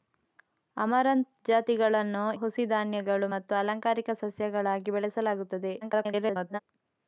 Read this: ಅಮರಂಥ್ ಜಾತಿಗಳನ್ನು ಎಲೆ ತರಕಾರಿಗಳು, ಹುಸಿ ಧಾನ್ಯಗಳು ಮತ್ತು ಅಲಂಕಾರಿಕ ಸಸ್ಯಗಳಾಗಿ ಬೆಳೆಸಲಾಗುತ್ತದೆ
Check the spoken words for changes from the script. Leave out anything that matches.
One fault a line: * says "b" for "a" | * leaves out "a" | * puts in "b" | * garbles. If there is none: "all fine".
* leaves out "ಎಲೆ ತರಕಾರಿಗಳು"
* garbles